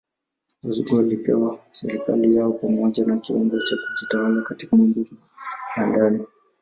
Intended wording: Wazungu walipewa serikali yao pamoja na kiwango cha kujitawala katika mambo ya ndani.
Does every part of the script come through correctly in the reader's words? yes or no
yes